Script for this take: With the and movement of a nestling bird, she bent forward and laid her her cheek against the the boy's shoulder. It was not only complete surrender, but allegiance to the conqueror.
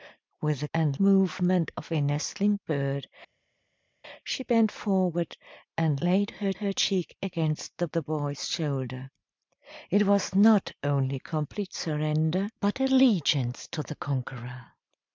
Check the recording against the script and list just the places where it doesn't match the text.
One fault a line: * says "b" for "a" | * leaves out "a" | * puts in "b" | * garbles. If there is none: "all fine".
all fine